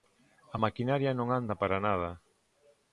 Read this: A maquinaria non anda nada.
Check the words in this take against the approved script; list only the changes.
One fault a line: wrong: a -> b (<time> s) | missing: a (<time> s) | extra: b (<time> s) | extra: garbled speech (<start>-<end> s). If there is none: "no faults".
extra: para (1.6 s)